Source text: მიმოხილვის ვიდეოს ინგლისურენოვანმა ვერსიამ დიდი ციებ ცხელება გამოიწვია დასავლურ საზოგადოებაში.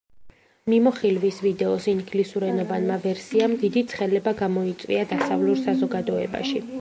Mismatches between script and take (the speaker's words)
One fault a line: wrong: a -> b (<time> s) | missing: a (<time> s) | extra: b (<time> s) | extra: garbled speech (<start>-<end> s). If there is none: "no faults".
missing: ციებ (3.8 s)